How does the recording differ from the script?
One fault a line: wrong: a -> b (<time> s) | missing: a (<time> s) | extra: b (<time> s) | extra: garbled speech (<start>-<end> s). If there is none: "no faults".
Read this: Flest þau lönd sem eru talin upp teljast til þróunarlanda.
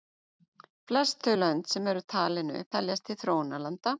no faults